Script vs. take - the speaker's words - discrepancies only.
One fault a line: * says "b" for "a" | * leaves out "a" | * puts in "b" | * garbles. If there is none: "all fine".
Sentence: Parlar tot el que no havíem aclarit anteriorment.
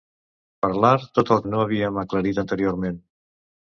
* leaves out "que"